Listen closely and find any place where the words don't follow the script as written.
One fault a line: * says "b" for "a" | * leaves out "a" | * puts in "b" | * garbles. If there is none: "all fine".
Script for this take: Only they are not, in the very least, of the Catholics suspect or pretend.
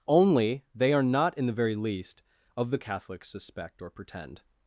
all fine